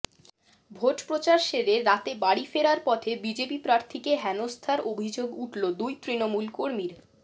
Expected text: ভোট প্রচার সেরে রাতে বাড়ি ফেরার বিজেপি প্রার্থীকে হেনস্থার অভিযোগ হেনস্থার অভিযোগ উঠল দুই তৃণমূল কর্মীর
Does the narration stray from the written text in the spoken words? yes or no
yes